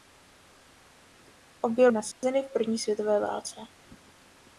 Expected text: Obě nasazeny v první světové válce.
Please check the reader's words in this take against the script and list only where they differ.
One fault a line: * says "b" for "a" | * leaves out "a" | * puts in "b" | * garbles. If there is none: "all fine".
all fine